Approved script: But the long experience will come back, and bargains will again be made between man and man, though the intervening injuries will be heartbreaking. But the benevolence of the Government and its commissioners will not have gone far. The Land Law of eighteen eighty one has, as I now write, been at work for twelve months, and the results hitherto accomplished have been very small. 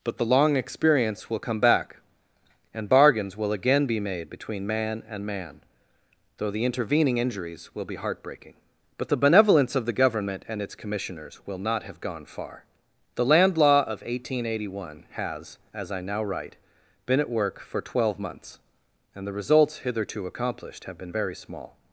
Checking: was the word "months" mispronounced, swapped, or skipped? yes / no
no